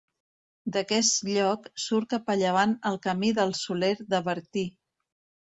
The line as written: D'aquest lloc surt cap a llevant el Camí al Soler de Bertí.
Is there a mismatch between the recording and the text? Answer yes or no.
yes